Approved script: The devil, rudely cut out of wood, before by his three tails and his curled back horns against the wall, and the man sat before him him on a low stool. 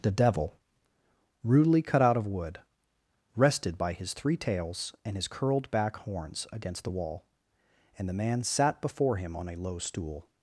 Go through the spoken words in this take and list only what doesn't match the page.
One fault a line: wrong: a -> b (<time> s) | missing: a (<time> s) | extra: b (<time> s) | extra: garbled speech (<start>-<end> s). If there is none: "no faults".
wrong: before -> rested (3.3 s)
missing: him (9.3 s)